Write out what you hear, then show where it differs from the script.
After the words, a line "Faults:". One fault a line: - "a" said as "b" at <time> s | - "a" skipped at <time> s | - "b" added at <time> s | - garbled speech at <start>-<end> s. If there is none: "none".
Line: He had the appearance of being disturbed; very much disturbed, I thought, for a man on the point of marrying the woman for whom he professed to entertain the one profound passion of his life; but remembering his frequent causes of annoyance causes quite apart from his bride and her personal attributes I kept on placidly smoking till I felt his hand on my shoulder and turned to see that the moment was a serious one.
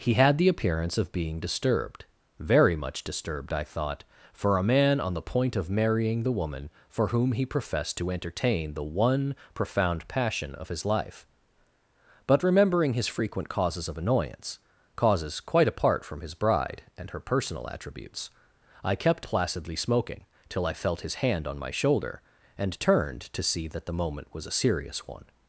He had the appearance of being disturbed; very much disturbed, I thought, for a man on the point of marrying the woman for whom he professed to entertain the one profound passion of his life; but remembering his frequent causes of annoyance causes quite apart from his bride and her personal attributes I kept placidly smoking till I felt his hand on my shoulder and turned to see that the moment was a serious one.
Faults:
- "on" skipped at 19.3 s